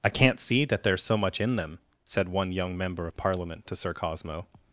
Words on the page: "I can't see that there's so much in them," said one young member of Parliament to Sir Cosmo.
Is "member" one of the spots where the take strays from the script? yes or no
no